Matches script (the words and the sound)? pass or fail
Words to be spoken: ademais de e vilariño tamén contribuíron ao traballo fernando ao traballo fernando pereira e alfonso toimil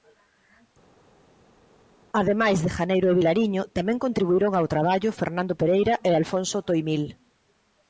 fail